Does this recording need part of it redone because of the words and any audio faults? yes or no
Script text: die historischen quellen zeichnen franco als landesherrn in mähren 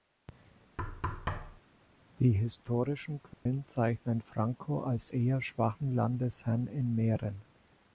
yes